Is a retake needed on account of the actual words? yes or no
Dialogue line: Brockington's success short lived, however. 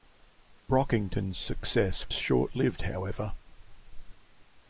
no